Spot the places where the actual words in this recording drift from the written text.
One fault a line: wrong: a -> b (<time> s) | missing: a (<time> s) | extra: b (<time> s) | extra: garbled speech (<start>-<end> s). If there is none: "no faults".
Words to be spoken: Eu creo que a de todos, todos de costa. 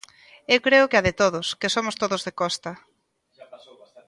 extra: que somos (1.6 s)